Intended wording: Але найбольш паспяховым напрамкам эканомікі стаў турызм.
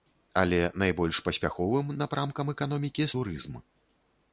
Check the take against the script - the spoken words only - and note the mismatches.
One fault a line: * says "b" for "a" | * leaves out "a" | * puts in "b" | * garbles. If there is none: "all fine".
* leaves out "стаў"